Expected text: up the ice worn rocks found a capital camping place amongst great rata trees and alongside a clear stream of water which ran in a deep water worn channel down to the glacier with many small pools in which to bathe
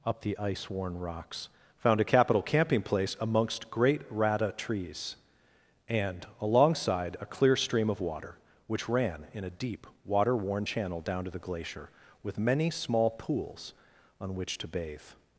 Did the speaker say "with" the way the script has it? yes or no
yes